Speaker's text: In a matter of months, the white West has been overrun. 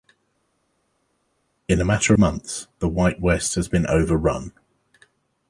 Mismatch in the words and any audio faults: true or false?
true